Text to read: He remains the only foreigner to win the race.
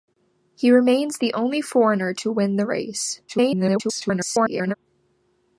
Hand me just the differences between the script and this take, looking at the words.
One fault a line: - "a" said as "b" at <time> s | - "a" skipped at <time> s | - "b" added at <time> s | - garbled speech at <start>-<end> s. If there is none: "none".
- garbled speech at 3.3-4.7 s